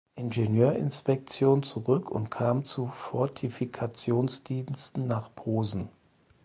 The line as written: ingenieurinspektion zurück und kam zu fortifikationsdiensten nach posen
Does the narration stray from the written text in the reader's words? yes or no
no